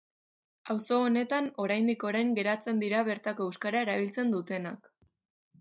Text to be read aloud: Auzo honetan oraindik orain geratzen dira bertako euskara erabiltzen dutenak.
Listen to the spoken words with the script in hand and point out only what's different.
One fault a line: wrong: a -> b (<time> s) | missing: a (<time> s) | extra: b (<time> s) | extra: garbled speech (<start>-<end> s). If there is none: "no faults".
no faults